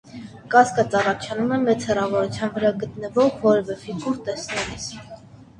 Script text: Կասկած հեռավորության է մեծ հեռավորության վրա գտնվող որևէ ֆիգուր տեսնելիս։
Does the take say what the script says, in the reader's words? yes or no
no